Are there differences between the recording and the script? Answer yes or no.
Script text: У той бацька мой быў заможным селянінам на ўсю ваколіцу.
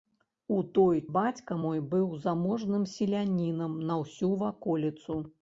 no